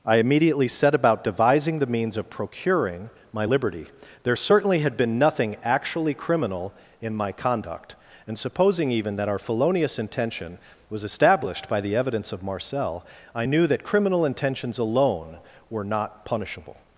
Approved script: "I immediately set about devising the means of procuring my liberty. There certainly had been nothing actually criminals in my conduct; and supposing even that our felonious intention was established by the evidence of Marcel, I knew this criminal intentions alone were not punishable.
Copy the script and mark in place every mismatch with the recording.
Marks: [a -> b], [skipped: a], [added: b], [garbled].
"I immediately set about devising the means of procuring my liberty. There certainly had been nothing actually [criminals -> criminal] in my conduct; and supposing even that our felonious intention was established by the evidence of Marcel, I knew [this -> that] criminal intentions alone were not punishable.